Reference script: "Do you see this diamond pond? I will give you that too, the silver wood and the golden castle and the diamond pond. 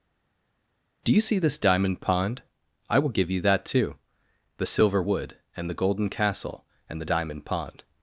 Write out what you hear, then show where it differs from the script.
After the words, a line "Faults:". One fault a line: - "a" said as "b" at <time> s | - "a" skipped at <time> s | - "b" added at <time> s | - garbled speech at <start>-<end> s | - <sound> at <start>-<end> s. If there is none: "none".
"Do you see this diamond pond? I will give you that too, the silver wood and the golden castle and the diamond pond.
Faults:
none